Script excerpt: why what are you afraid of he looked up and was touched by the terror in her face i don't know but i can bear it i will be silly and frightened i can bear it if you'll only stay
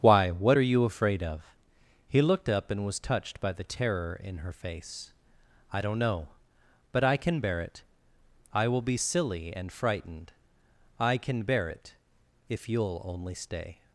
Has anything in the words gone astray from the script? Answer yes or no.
no